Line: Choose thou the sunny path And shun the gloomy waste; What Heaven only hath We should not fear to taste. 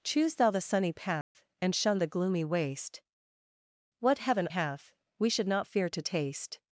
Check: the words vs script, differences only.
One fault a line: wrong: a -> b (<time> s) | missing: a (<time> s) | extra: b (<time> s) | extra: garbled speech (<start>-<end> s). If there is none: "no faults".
missing: only (4.5 s)